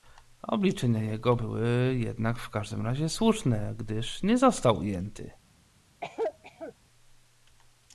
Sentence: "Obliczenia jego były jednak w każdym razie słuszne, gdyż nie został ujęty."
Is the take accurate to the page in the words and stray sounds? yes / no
no